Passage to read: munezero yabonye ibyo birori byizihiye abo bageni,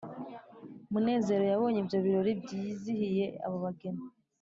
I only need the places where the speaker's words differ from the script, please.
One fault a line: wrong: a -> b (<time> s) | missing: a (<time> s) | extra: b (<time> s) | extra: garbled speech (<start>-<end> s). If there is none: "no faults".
no faults